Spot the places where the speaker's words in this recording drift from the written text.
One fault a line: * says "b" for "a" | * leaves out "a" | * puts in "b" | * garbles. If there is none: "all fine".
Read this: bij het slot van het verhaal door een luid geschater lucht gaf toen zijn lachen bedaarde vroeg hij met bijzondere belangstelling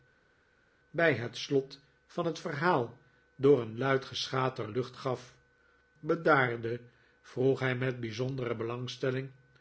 * leaves out "toen zijn lachen"